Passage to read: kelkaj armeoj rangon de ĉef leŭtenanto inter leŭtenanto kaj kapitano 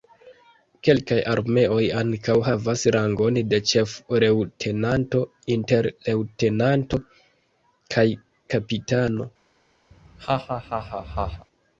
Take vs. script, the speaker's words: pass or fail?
fail